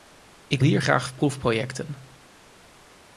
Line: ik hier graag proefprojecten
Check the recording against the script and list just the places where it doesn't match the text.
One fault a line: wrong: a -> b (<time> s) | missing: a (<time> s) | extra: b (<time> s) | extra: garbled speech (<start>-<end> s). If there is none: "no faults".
no faults